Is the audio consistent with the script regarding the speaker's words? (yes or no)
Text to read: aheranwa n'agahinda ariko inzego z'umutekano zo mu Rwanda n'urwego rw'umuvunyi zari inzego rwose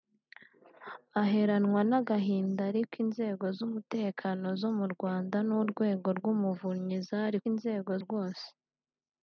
yes